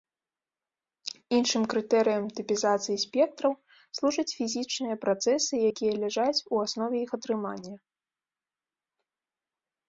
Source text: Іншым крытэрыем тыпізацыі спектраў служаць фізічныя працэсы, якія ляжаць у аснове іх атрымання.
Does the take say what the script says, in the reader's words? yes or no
yes